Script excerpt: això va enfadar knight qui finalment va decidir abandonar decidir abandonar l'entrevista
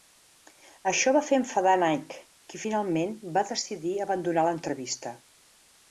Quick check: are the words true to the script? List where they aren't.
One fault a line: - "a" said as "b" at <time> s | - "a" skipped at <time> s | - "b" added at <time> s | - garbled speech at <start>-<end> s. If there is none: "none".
- "fer" added at 1.3 s
- "decidir abandonar" skipped at 4.5 s